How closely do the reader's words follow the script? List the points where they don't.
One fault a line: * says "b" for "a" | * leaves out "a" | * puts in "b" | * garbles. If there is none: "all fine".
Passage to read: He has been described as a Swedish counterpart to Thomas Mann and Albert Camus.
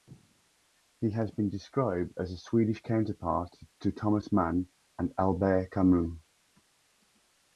all fine